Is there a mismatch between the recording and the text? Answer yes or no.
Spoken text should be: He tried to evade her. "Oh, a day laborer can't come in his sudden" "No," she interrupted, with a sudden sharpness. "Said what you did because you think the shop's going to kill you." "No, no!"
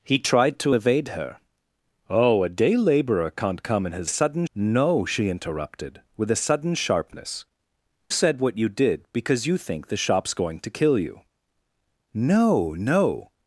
no